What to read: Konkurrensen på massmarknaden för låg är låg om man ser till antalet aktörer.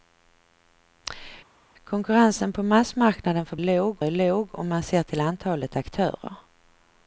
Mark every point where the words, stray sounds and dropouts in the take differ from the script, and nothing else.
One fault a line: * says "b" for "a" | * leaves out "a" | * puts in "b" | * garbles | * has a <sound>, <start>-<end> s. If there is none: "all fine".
all fine